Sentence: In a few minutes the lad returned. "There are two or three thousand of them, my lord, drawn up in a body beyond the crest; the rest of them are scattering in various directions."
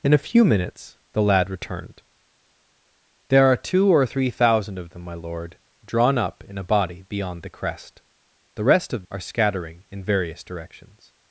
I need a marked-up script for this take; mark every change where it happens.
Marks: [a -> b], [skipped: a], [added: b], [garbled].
In a few minutes the lad returned. "There are two or three thousand of them, my lord, drawn up in a body beyond the crest; the rest of [skipped: them] are scattering in various directions."